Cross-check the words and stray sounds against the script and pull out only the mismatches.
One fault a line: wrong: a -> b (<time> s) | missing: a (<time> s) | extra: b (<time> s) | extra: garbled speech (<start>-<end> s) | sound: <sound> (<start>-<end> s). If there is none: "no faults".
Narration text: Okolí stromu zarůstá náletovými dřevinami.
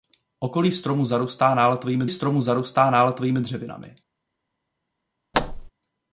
extra: stromu zarůstá náletovými (2.1 s)
sound: thud (5.3-5.7 s)